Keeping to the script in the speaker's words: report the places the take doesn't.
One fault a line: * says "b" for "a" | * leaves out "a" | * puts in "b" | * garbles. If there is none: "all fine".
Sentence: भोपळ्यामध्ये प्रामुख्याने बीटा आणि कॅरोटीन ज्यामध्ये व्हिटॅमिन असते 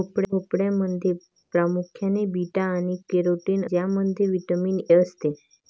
all fine